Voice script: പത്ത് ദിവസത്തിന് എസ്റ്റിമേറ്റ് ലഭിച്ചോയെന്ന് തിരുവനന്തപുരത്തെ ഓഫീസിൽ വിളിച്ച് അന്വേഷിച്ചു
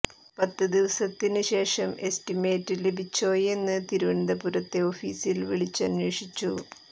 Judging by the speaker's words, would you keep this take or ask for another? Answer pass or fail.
fail